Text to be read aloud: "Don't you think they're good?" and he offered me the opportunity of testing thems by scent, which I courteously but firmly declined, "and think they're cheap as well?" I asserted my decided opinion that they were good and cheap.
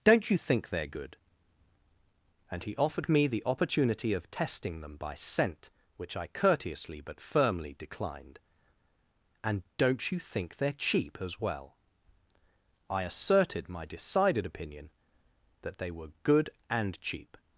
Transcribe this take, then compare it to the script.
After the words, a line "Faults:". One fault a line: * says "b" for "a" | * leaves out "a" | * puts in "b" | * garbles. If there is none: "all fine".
"Don't you think they're good?" and he offered me the opportunity of testing them by scent, which I courteously but firmly declined, "and don't you think they're cheap as well?" I asserted my decided opinion that they were good and cheap.
Faults:
* says "them" for "thems"
* puts in "don't you"